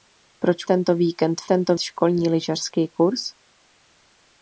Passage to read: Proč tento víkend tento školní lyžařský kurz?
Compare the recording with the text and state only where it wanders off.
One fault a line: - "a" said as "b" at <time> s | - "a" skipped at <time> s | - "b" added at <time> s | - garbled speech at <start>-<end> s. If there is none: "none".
none